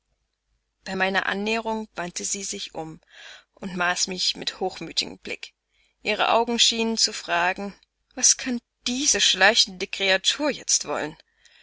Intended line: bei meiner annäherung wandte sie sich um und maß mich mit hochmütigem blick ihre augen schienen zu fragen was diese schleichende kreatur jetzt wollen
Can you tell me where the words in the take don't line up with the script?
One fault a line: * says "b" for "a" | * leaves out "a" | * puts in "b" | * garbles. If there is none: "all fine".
* puts in "kann"